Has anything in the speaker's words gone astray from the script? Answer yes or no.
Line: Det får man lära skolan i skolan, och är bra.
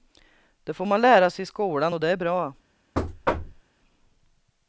yes